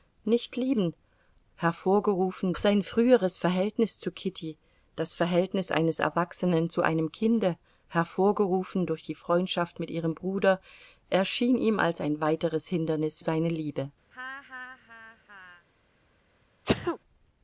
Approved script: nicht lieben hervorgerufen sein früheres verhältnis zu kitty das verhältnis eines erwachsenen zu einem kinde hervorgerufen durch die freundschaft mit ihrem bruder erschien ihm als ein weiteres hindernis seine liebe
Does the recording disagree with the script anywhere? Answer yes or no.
no